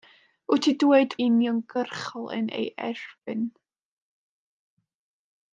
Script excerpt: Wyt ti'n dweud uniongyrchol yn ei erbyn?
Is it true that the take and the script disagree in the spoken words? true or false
false